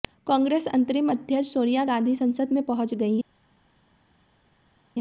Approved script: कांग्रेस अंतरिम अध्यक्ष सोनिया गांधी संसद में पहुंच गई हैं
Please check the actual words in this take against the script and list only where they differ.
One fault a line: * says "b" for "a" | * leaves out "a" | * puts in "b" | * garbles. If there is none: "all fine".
all fine